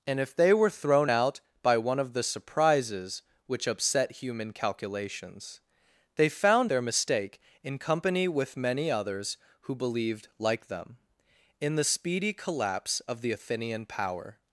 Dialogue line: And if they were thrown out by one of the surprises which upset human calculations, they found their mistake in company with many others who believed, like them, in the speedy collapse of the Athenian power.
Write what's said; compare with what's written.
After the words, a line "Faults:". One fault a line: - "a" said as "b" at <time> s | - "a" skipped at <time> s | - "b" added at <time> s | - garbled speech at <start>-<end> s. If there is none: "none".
And if they were thrown out by one of the surprises which upset human calculations, they found their mistake in company with many others who believed, like them, in the speedy collapse of the Athenian power.
Faults:
none